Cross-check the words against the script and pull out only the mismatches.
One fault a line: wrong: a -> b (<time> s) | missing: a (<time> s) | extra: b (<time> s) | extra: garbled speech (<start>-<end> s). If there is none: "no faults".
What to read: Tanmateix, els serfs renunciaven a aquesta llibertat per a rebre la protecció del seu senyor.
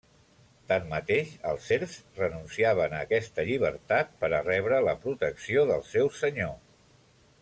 no faults